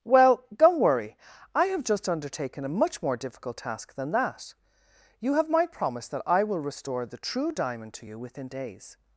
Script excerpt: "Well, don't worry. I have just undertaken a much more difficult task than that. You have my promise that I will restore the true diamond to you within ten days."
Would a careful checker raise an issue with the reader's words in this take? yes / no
yes